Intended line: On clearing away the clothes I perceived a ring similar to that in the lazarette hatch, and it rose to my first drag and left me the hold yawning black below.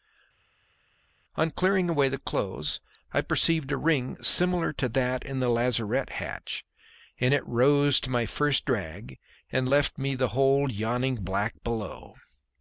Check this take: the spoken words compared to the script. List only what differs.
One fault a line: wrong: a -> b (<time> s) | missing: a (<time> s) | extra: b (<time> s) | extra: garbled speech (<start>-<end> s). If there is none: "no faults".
no faults